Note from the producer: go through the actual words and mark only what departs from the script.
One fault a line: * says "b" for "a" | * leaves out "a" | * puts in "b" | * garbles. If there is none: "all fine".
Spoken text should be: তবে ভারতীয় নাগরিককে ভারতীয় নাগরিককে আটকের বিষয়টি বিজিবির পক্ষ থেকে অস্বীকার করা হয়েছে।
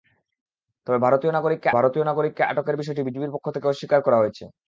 all fine